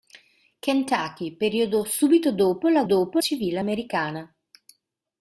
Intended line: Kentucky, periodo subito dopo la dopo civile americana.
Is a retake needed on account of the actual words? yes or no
no